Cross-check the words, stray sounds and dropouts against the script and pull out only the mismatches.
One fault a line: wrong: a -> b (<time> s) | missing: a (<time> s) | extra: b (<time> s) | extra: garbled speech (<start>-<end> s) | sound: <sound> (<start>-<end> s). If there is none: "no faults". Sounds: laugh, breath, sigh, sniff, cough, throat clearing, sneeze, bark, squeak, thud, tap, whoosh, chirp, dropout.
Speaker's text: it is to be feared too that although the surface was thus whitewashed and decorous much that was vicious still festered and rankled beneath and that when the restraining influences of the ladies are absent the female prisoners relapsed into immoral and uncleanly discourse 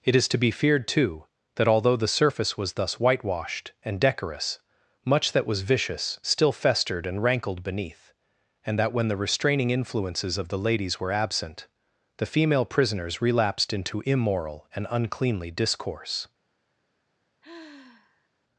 wrong: are -> were (11.0 s)
sound: sigh (17.4-18.3 s)